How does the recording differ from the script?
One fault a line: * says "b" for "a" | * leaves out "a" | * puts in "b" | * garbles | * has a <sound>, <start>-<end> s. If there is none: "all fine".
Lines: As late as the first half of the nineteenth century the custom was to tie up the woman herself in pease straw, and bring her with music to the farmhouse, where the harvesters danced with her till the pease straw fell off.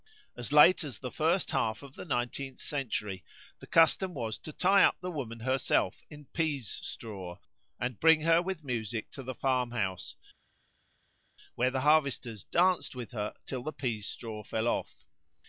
all fine